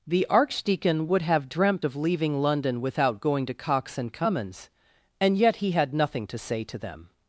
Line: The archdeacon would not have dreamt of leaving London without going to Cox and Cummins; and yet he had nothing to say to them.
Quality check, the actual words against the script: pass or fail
fail